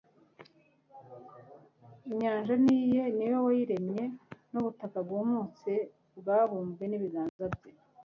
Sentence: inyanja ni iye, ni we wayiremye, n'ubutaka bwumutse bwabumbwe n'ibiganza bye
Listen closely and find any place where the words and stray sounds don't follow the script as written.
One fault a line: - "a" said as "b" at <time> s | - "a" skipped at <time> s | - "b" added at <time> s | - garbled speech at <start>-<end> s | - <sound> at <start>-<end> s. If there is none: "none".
- dropout at 7.3-7.4 s